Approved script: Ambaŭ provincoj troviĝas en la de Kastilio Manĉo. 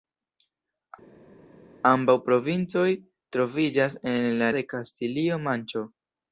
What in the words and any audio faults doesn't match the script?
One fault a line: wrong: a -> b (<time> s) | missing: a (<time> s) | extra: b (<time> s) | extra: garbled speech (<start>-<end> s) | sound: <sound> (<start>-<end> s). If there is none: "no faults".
no faults